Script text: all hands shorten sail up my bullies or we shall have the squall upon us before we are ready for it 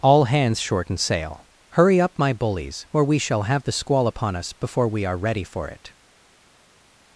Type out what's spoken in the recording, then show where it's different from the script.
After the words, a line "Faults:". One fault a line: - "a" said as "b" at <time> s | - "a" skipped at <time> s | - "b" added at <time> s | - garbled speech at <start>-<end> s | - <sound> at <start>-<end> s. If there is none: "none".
all hands shorten sail hurry up my bullies or we shall have the squall upon us before we are ready for it
Faults:
- "hurry" added at 1.7 s